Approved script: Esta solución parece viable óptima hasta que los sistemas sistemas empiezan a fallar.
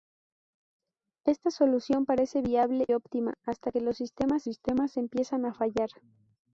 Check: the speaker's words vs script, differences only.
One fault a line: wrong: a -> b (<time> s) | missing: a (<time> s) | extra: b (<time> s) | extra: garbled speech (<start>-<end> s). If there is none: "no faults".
no faults